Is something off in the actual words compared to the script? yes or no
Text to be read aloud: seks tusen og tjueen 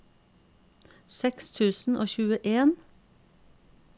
no